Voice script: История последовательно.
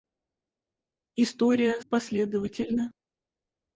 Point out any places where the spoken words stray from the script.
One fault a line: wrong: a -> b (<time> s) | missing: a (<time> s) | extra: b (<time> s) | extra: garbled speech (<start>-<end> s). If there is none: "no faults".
no faults